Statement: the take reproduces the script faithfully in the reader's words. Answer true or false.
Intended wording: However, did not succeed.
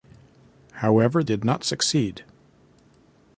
true